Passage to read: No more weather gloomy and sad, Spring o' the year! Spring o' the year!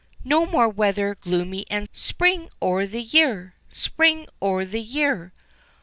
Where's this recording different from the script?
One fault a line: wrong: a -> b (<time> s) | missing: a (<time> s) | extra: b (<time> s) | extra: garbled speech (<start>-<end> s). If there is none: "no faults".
missing: sad (1.9 s)